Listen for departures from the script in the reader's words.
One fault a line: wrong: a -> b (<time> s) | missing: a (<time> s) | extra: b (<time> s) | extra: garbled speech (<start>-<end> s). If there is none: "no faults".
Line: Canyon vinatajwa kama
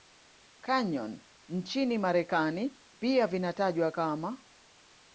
extra: nchini Marekani pia (1.5 s)